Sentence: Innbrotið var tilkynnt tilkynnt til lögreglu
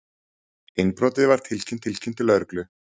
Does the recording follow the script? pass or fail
pass